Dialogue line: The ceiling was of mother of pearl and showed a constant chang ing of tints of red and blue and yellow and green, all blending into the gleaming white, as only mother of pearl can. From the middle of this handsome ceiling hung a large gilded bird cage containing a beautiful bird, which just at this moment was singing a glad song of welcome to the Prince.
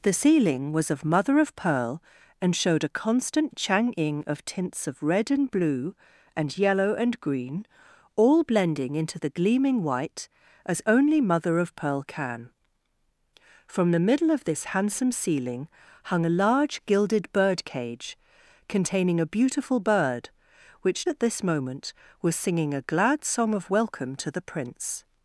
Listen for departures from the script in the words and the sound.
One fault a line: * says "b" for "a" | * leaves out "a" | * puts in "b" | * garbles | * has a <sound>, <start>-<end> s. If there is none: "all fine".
* leaves out "just"